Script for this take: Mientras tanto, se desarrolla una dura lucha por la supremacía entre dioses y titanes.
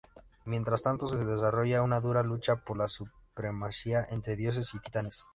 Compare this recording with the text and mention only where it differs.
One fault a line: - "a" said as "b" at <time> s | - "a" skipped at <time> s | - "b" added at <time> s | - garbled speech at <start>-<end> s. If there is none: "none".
none